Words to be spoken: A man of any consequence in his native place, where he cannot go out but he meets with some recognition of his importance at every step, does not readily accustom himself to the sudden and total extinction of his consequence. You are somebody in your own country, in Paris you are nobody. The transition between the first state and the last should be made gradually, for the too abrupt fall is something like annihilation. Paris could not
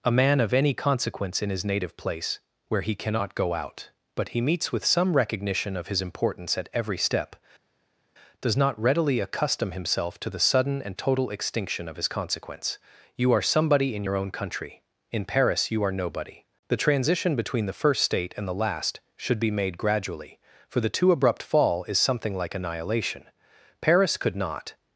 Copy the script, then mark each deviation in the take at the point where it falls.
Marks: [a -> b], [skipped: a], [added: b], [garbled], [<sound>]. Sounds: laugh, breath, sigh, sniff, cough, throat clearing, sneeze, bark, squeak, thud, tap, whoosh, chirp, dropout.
A man of any consequence in his native place, where he cannot go out but he meets with some recognition of his importance at every step, does not readily accustom himself to the sudden and total extinction of his consequence. You are somebody in your own country, in Paris you are nobody. The transition between the first state and the last should be made gradually, for the too abrupt fall is something like annihilation. Paris could not